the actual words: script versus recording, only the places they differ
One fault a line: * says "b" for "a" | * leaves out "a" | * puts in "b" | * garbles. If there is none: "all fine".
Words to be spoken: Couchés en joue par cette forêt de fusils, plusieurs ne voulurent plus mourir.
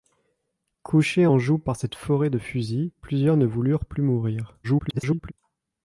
* garbles